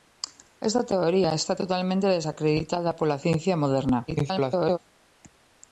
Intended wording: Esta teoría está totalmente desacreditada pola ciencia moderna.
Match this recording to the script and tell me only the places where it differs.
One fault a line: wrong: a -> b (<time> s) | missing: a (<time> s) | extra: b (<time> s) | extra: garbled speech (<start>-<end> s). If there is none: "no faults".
extra: garbled speech (4.1-4.8 s)